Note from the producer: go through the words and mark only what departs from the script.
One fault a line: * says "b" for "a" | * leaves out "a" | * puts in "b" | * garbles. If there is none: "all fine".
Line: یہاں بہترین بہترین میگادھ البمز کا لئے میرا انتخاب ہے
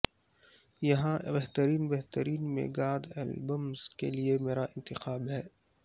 * says "کے" for "کا"